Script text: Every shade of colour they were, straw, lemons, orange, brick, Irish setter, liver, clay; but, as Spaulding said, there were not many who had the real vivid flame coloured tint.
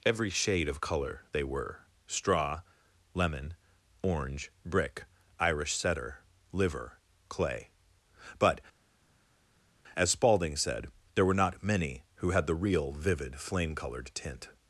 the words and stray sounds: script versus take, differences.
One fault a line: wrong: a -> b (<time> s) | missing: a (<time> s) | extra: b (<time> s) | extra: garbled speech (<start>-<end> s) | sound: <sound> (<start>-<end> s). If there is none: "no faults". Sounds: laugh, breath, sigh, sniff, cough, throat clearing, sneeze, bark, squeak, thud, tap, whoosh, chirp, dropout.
wrong: lemons -> lemon (3.1 s)